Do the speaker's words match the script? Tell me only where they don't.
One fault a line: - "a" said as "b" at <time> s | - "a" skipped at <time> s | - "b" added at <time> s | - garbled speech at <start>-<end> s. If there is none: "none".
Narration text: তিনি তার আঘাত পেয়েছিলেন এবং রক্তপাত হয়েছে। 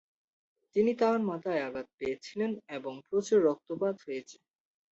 - "মাথায়" added at 1.3 s
- "প্রচুর" added at 3.1 s